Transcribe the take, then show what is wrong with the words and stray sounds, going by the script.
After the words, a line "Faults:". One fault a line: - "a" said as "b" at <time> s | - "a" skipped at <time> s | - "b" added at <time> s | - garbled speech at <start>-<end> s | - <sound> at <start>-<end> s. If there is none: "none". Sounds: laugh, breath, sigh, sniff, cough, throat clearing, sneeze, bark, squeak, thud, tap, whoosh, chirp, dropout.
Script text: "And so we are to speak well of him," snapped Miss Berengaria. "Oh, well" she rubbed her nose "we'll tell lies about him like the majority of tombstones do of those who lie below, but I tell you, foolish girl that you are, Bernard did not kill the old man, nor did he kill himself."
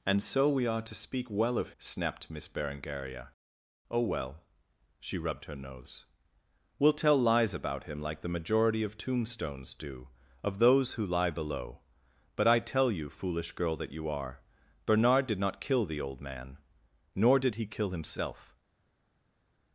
"And so we are to speak well of," snapped Miss Berengaria. "Oh, well" she rubbed her nose "we'll tell lies about him like the majority of tombstones do of those who lie below, but I tell you, foolish girl that you are, Bernard did not kill the old man, nor did he kill himself."
Faults:
- "him" skipped at 1.7 s